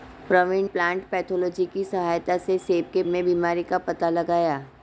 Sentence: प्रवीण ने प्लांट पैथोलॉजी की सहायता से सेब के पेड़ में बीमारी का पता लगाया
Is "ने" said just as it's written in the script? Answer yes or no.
no